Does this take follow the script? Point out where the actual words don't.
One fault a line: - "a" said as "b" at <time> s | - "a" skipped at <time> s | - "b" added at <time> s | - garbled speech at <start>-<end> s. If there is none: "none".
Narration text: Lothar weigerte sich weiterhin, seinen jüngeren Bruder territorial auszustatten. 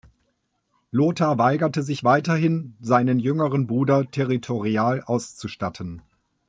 none